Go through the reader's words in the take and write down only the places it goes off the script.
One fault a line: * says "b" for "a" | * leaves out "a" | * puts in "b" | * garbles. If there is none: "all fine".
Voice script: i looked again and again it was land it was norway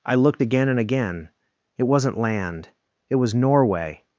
* says "wasn't" for "was"